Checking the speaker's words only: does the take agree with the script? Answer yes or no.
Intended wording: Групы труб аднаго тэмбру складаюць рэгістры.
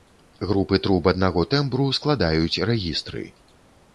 yes